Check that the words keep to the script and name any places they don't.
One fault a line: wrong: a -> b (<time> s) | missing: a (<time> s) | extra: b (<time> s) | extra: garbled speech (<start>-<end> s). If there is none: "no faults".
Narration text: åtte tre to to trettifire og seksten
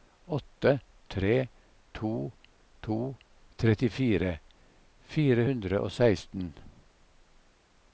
extra: fire hundre (5.1 s)